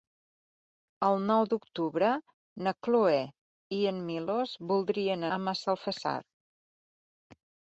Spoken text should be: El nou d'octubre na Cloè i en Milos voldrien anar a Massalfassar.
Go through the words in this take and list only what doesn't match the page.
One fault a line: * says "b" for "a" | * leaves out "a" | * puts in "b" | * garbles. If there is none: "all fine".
* leaves out "anar"